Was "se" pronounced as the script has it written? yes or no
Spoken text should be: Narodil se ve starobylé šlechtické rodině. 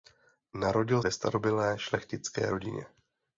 no